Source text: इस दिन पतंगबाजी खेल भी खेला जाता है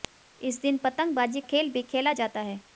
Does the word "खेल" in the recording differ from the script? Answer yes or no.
no